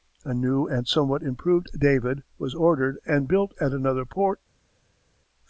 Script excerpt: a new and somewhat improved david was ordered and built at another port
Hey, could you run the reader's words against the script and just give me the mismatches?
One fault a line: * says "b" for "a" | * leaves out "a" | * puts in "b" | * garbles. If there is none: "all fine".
all fine